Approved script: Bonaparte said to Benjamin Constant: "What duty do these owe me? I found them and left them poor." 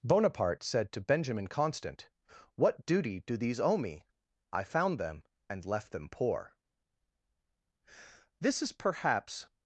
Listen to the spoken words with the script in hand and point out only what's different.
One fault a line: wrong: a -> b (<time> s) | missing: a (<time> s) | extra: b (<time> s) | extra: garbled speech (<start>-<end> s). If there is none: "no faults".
extra: This is perhaps (8.4 s)